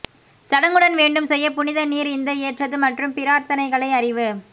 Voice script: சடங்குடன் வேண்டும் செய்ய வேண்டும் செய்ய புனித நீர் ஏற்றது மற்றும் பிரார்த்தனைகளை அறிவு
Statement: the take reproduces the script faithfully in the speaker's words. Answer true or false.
false